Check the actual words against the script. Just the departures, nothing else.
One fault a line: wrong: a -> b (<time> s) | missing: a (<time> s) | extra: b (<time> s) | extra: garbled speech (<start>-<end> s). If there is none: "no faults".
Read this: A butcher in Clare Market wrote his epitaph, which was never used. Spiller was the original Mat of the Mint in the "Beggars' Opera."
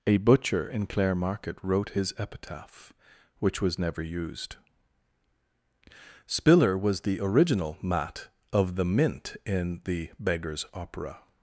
no faults